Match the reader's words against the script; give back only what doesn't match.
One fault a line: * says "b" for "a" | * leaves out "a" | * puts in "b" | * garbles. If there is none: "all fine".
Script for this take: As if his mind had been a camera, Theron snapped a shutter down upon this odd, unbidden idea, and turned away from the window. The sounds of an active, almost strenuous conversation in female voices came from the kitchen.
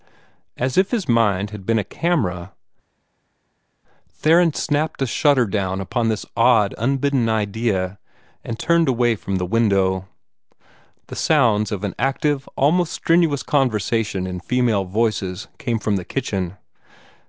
all fine